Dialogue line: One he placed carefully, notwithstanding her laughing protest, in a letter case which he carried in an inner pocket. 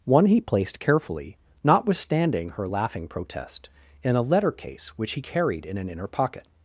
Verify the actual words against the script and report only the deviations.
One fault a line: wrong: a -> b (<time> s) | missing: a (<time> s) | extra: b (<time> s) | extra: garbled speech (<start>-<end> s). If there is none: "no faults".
no faults